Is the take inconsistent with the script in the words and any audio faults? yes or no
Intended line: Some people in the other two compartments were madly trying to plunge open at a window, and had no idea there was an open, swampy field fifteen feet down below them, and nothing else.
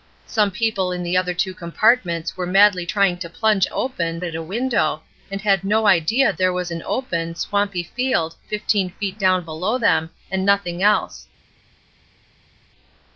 no